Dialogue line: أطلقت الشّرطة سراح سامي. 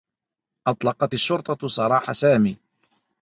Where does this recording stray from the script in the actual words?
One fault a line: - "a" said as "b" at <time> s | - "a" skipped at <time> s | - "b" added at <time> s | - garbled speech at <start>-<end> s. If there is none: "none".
none